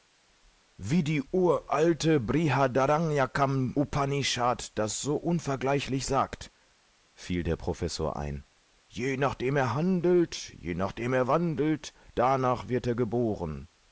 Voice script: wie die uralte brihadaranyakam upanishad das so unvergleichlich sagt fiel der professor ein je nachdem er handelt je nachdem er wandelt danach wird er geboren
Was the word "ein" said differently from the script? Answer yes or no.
no